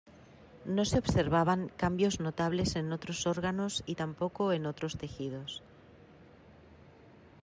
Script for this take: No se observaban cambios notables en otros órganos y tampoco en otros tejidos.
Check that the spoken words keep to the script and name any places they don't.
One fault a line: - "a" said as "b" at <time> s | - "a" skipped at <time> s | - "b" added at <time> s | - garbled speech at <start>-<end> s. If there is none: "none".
none